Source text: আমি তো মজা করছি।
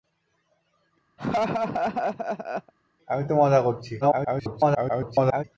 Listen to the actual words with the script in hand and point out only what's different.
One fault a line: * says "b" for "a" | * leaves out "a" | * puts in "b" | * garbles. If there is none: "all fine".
* garbles